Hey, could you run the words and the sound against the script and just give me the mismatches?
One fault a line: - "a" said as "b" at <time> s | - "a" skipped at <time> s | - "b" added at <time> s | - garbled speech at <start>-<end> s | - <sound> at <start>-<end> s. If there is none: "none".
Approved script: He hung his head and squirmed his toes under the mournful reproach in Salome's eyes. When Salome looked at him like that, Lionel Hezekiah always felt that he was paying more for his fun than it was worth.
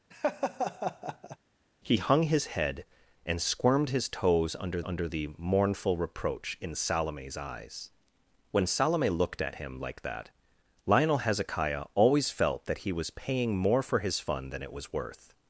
- laugh at 0.1-1.4 s
- "under" added at 4.8 s